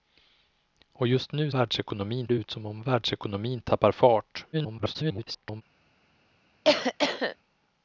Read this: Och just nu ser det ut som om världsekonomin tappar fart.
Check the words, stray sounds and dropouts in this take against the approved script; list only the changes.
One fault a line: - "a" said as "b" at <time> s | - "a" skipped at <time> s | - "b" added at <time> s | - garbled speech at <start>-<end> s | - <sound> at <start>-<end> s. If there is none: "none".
- "ser" said as "världsekonomin" at 1.5 s
- garbled speech at 4.5-5.6 s
- cough at 6.6-7.4 s